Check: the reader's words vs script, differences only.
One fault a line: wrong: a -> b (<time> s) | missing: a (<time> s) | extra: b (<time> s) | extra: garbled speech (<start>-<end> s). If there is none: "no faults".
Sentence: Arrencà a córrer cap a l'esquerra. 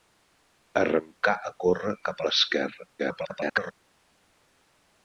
extra: garbled speech (3.0-3.7 s)